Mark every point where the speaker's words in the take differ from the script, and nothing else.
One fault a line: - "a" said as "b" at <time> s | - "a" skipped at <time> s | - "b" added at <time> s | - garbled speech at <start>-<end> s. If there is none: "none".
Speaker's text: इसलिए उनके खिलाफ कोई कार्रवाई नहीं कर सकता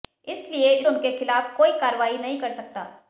none